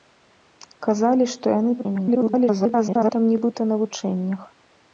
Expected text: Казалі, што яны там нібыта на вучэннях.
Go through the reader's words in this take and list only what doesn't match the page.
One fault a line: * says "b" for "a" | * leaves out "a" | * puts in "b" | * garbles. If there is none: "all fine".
* garbles